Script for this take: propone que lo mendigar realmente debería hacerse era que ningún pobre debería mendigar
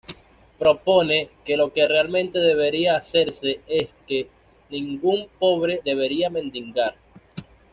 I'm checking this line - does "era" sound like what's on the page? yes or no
no